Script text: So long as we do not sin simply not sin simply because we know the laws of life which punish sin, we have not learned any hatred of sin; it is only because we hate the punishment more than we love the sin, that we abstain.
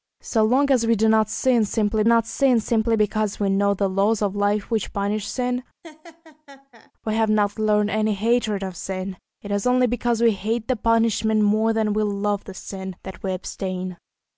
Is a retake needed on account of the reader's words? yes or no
no